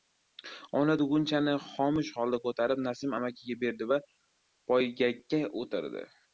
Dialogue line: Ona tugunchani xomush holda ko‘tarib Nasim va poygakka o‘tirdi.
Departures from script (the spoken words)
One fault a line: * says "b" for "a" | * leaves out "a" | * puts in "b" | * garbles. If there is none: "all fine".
* puts in "amakiga berdi"